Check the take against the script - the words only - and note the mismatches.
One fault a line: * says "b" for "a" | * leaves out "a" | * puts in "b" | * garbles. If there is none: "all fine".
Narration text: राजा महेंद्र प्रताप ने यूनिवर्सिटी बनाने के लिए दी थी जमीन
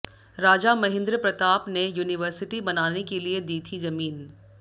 all fine